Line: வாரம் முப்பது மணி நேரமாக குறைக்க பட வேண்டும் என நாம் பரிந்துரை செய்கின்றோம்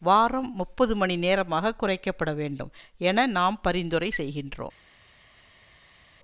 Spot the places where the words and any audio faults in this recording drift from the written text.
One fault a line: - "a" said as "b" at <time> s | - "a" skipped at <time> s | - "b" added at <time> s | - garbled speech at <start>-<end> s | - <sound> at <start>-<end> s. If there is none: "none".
none